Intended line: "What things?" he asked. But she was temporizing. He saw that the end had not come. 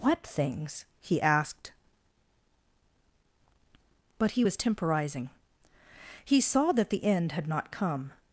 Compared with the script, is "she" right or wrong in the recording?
wrong